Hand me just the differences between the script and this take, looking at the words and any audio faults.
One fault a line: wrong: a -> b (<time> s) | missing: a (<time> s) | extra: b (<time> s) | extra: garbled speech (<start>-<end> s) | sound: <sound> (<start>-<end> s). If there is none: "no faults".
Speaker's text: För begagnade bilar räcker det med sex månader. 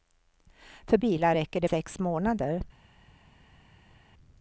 missing: begagnade (1.0 s)
missing: med (1.7 s)